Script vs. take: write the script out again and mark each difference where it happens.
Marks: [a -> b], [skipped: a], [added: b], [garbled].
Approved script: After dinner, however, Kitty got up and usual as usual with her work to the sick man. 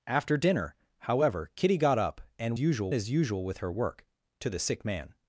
After dinner, however, Kitty got up and usual as usual with her work to the sick man.